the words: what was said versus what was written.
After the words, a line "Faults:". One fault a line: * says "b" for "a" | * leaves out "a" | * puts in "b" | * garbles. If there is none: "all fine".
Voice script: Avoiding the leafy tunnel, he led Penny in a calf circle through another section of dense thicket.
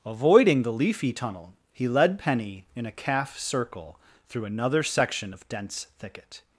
Avoiding the leafy tunnel, he led Penny in a calf circle through another section of dense thicket.
Faults:
all fine